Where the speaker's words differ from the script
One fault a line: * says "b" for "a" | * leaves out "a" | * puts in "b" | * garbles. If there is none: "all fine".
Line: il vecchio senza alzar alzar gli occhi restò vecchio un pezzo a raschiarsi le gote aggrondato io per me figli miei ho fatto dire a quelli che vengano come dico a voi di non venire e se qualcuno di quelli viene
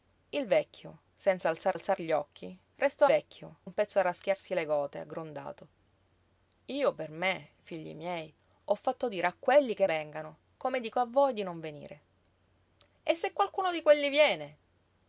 all fine